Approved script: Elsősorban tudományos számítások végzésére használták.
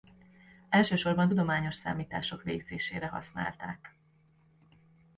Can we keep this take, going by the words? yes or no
yes